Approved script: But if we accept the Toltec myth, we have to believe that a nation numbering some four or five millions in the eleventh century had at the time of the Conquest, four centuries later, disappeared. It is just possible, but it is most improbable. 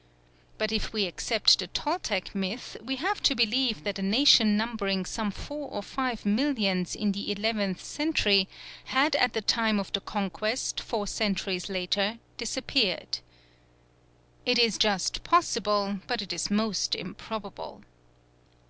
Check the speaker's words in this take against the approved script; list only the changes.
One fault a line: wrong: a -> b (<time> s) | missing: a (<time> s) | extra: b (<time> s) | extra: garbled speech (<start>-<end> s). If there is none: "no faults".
no faults